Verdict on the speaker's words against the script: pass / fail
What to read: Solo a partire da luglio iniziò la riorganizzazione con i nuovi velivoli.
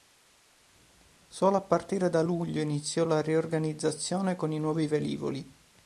pass